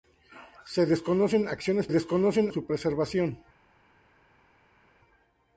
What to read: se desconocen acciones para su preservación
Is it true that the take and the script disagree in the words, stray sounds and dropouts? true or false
true